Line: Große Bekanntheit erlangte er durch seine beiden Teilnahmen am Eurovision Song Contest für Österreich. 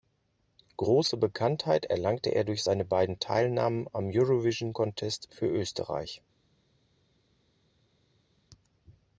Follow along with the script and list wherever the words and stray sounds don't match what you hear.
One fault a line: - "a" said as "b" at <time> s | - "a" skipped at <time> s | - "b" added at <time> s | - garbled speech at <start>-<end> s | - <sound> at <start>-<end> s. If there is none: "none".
- "Song" skipped at 4.7 s